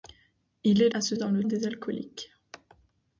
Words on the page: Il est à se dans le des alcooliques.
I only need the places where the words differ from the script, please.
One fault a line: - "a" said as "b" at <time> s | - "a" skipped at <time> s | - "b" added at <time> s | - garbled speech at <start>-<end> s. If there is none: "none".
none